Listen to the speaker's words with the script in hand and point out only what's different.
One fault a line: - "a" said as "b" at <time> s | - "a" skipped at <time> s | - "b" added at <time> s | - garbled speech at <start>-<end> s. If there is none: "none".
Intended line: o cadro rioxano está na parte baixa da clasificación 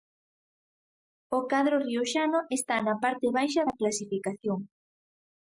none